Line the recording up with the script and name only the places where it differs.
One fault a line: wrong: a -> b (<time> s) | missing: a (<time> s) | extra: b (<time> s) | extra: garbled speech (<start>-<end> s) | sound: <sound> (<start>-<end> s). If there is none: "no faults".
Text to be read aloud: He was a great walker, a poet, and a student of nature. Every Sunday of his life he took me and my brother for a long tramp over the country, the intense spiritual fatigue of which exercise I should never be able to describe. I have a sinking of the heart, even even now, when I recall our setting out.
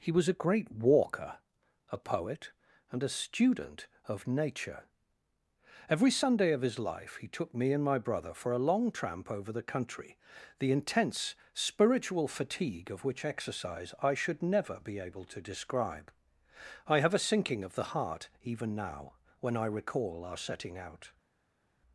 missing: even (18.7 s)